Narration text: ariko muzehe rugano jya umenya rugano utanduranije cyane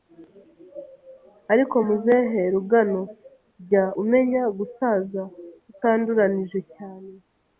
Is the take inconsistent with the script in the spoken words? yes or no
yes